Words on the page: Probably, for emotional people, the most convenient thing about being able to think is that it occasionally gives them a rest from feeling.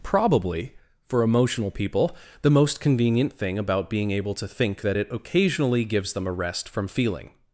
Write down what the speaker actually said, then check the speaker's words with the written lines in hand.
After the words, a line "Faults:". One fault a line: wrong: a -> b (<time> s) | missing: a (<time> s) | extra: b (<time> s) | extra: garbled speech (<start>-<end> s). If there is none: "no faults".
Probably, for emotional people, the most convenient thing about being able to think that it occasionally gives them a rest from feeling.
Faults:
missing: is (4.8 s)